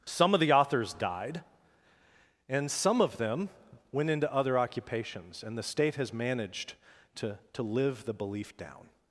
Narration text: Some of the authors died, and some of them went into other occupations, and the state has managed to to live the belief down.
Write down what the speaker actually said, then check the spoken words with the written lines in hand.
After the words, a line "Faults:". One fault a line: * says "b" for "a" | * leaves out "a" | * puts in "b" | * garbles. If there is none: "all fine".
Some of the authors died, and some of them went into other occupations, and the state has managed to to live the belief down.
Faults:
all fine